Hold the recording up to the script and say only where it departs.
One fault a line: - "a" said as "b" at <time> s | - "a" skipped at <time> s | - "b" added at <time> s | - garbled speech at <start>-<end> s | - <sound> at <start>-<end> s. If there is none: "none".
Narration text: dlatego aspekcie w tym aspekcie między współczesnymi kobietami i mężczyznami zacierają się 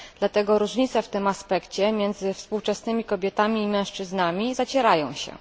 - "aspekcie" said as "różnice" at 0.6 s